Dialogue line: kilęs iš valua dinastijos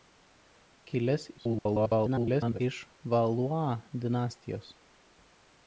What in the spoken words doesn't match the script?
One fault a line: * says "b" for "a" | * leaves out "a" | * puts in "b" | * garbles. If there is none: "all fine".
* garbles